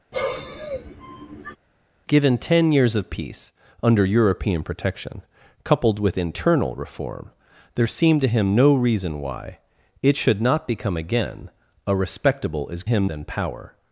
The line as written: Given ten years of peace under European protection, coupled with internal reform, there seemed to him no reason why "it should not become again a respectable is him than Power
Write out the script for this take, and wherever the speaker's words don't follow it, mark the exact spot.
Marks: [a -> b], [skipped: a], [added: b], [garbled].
Given ten years of peace under European protection, coupled with internal reform, there seemed to him no reason why "it should not become again a respectable is him than Power